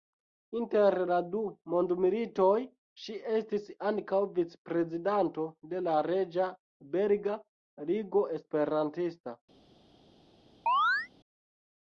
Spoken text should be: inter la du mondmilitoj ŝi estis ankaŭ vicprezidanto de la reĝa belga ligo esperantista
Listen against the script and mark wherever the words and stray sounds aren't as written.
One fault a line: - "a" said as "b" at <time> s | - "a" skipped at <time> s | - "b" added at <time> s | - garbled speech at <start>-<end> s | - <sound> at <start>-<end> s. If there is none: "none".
- chirp at 10.7-11.1 s